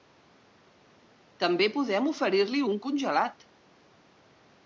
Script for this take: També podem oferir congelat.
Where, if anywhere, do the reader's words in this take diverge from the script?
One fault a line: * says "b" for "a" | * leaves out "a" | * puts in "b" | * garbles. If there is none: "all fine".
* puts in "li un"